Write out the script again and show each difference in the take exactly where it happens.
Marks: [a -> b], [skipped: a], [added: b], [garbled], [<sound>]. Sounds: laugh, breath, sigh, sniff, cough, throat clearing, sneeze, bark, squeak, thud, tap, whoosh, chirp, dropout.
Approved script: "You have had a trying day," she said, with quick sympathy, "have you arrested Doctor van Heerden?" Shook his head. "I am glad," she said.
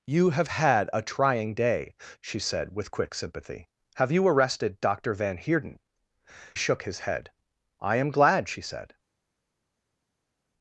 "You have had a trying day," she said, with quick sympathy, "have you arrested Doctor van Heerden?" Shook his head. "I am glad," she said.